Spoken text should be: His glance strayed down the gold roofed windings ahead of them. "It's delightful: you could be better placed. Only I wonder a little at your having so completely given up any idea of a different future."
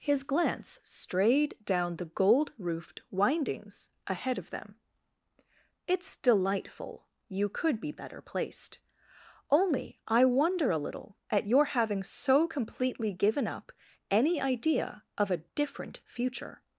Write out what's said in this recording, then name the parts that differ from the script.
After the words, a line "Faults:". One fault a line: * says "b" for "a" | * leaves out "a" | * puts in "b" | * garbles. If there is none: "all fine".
His glance strayed down the gold roofed windings ahead of them. "It's delightful: you could be better placed. Only I wonder a little at your having so completely given up any idea of a different future."
Faults:
all fine